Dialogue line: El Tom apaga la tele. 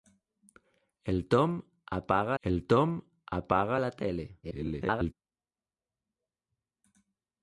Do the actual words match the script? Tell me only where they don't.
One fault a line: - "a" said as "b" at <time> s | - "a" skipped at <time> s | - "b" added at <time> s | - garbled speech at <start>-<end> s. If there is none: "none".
- "el Tom apaga" added at 2.4 s
- garbled speech at 4.4-5.1 s